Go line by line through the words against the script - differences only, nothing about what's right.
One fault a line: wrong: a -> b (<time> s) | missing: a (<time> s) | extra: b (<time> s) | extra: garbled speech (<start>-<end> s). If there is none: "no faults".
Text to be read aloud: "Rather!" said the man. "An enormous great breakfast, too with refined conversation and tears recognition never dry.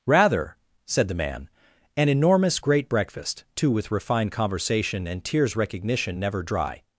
no faults